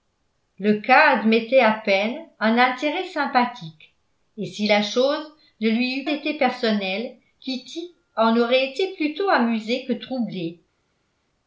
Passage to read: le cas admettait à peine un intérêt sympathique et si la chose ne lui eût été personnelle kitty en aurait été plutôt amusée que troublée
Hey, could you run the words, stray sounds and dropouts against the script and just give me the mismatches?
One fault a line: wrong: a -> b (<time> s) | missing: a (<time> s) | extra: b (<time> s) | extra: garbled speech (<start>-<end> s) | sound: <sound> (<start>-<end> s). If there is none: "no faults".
no faults